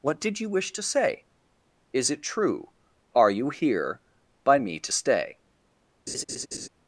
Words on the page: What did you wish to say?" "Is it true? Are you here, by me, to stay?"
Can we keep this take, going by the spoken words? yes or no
yes